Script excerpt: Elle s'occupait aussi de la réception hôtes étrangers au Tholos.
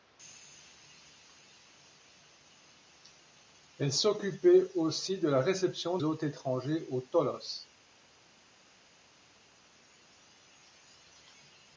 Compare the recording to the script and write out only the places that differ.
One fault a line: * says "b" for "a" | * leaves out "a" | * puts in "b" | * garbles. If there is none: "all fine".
all fine